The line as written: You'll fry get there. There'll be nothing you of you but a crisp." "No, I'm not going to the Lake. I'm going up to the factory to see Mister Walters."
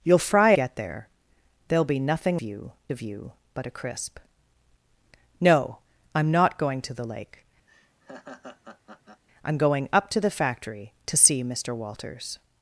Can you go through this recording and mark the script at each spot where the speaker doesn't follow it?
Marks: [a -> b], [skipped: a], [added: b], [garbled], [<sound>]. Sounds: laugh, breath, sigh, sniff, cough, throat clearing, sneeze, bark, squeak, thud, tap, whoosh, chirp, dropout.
You'll fry get there. There'll be nothing you of you but a crisp." "No, I'm not going to the Lake. [laugh] I'm going up to the factory to see Mister Walters."